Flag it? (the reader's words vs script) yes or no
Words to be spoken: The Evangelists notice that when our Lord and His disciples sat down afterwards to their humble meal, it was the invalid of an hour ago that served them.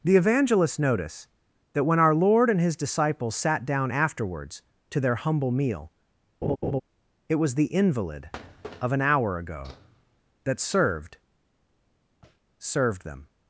yes